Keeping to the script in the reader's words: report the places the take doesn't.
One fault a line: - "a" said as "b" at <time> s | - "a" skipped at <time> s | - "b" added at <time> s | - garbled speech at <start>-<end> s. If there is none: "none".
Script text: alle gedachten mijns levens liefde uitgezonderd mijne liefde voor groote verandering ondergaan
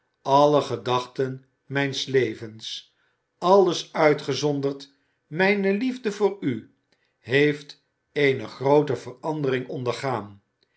- "liefde" said as "alles" at 3.4 s
- "u heeft eene" added at 6.4 s